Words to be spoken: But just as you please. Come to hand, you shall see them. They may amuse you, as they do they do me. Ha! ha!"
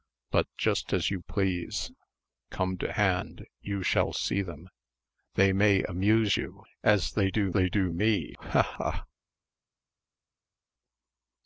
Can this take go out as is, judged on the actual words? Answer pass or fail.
pass